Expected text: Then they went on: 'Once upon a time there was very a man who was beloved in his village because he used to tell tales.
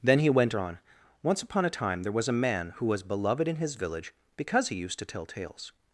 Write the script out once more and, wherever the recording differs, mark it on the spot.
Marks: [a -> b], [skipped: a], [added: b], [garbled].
Then [they -> he] went on: 'Once upon a time there was [skipped: very] a man who was beloved in his village because he used to tell tales.